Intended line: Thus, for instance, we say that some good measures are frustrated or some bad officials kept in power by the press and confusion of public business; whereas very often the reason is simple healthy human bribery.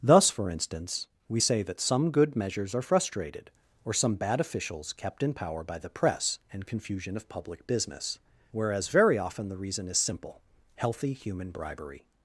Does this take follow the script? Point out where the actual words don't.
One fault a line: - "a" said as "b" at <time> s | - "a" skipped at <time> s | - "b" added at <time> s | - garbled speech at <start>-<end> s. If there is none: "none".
none